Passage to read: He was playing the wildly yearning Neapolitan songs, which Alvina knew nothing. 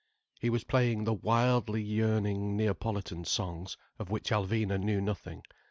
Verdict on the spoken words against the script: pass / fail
fail